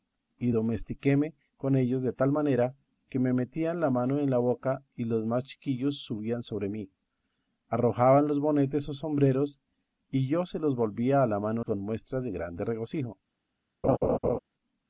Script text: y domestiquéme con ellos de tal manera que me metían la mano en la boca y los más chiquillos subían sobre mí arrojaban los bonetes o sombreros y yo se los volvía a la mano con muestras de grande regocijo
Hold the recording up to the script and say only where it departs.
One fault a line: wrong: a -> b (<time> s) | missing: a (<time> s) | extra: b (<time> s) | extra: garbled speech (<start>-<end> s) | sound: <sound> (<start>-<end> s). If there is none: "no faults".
sound: laugh (13.8-14.4 s)